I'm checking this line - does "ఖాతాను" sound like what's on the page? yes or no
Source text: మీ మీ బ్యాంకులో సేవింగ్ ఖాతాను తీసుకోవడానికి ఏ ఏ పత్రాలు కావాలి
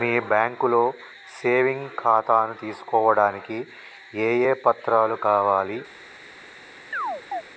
yes